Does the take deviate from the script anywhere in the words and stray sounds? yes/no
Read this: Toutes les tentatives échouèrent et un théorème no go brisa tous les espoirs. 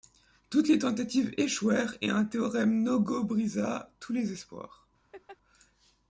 yes